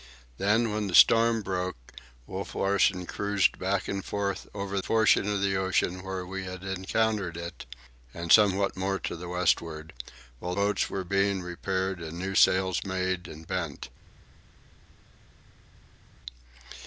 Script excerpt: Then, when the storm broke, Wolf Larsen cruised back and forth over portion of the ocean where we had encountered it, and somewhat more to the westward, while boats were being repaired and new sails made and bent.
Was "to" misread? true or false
false